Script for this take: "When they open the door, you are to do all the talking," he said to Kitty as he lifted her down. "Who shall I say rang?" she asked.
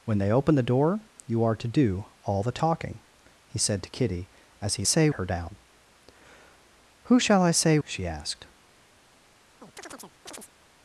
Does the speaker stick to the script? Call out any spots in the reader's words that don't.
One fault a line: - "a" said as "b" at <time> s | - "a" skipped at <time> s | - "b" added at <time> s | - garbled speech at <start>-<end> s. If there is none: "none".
- "lifted" said as "say" at 4.8 s
- "rang" skipped at 7.8 s